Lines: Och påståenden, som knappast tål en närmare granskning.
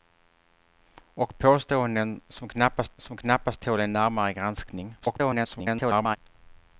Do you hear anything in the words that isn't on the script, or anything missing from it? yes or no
yes